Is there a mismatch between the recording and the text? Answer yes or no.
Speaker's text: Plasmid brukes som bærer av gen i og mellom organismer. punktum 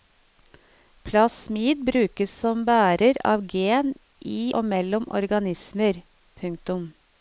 no